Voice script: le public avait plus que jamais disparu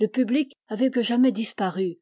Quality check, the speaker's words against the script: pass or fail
fail